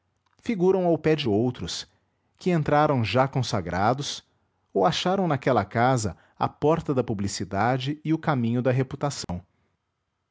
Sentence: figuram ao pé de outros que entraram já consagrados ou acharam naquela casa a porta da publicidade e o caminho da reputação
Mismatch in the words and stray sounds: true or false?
true